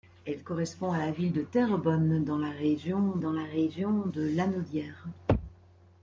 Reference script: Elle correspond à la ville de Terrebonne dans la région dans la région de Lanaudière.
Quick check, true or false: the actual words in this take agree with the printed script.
true